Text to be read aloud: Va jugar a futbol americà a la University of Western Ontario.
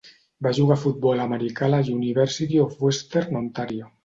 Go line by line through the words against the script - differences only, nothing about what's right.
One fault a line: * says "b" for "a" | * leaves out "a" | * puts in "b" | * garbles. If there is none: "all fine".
all fine